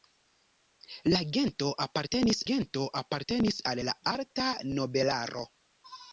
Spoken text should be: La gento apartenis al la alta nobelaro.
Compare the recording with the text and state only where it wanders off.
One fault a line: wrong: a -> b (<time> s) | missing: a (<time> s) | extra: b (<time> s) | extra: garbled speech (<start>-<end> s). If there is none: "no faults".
extra: gento apartenis (2.5 s)